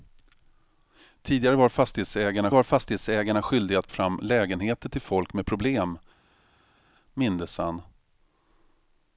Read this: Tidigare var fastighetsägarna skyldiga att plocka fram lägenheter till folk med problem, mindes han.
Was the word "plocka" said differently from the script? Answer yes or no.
yes